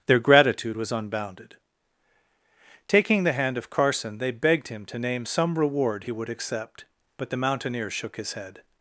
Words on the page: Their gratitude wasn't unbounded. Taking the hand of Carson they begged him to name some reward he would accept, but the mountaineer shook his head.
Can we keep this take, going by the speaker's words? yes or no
no